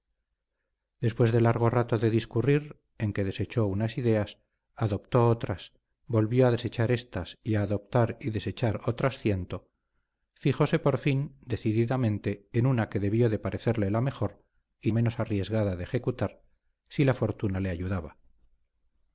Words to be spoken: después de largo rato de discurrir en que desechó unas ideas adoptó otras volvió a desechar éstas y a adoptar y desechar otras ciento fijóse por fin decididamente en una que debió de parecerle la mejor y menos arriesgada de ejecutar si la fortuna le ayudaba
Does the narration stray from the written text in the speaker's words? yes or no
no